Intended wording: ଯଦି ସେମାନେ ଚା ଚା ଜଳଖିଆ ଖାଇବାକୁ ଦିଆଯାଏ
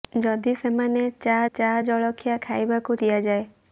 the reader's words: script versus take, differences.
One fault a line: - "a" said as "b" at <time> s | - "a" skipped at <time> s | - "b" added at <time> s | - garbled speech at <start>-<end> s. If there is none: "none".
none